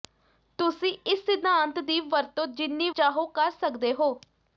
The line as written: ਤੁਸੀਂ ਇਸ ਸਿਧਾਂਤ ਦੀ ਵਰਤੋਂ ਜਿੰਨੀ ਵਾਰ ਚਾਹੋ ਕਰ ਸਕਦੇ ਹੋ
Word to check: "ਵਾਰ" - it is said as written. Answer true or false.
false